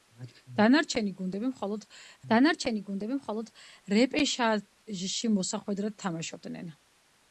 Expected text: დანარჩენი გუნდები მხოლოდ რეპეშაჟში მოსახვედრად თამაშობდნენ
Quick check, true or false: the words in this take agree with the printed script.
false